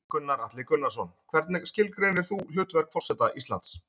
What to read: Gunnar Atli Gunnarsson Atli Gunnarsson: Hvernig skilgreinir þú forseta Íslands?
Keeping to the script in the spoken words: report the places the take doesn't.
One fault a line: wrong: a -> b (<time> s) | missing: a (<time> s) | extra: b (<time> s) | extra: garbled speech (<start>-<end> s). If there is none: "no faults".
missing: Atli Gunnarsson (1.1 s)
extra: hlutverk (2.5 s)